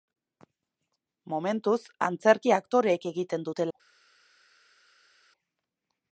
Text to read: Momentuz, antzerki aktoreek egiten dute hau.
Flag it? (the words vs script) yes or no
no